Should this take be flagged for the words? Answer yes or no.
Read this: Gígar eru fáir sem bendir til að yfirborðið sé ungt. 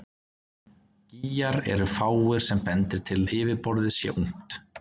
no